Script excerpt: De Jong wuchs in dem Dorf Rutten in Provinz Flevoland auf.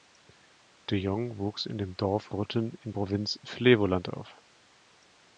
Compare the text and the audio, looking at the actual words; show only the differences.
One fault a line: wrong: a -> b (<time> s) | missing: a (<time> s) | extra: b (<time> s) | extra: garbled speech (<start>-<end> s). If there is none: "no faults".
no faults